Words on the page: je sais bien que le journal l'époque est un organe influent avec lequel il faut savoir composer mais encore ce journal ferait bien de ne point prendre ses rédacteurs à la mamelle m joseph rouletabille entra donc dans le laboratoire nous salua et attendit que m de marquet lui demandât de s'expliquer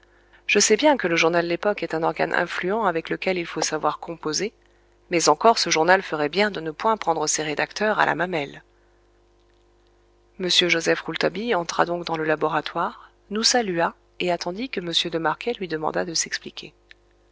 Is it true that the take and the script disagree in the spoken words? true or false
false